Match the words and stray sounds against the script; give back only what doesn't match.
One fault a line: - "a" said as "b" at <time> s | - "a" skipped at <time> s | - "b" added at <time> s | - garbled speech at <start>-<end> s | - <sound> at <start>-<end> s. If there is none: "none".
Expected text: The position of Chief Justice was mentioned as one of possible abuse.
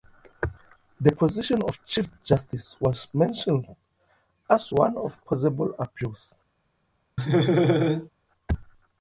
- laugh at 7.2-8.1 s